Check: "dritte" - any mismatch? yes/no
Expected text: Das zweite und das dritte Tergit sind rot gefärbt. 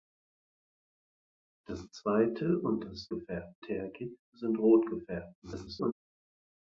yes